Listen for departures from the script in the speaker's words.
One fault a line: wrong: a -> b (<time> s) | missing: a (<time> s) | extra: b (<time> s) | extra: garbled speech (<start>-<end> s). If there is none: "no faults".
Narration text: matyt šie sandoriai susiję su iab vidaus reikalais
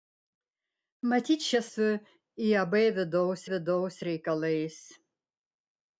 missing: sandoriai susiję (1.6 s)
extra: vidaus (3.5 s)